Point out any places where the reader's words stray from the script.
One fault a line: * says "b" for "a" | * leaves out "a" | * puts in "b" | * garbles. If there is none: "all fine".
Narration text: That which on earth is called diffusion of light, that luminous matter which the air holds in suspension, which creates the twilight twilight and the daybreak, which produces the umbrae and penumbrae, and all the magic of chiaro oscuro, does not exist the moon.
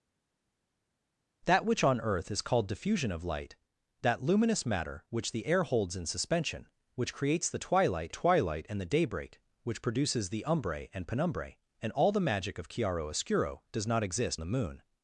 all fine